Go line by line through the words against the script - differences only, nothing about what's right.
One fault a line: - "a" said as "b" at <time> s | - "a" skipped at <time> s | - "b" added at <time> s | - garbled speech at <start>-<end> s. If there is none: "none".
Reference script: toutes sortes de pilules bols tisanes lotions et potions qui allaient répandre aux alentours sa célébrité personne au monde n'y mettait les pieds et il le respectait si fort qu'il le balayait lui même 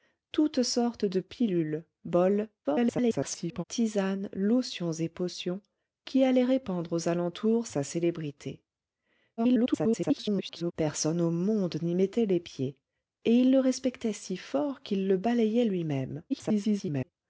- garbled speech at 2.6-3.6 s
- garbled speech at 9.4-10.7 s
- garbled speech at 16.3-17.1 s